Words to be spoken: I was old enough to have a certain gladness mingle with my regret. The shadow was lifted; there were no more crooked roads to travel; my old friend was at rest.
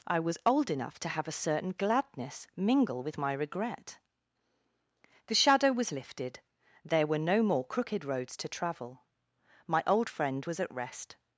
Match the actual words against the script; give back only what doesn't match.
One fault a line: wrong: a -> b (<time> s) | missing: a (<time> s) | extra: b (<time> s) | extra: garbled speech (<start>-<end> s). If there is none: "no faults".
no faults